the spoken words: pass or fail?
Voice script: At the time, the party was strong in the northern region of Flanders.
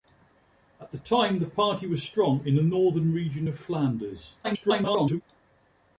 fail